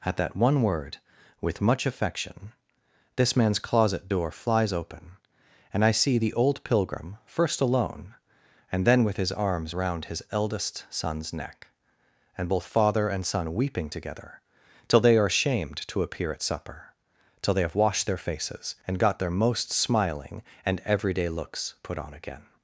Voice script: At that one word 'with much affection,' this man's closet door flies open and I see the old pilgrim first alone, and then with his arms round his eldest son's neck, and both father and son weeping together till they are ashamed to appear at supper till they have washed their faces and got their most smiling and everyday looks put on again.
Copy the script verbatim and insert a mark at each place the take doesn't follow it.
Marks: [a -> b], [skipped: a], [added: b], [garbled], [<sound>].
At that one word 'with much affection,' this man's closet door flies open and I see the old pilgrim first alone, and then with his arms round his eldest son's neck, and both father and son weeping together till they are ashamed to appear at supper till they have washed their faces and got their most smiling and everyday looks put on again.